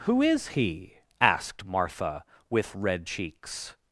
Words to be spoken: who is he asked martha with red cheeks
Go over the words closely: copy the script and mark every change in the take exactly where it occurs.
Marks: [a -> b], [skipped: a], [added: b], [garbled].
who is he asked martha with red cheeks